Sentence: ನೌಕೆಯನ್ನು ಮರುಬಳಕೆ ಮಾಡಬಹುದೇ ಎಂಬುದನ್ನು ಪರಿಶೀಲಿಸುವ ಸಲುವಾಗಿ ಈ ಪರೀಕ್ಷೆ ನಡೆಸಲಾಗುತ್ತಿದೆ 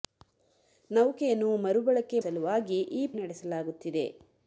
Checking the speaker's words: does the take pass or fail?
fail